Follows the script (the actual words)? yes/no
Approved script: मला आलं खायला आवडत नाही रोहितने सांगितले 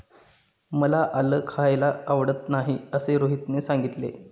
no